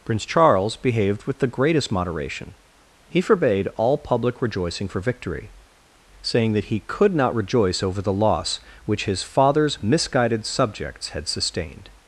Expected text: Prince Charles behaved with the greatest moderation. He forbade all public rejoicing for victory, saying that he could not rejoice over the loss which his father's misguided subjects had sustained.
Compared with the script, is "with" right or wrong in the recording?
right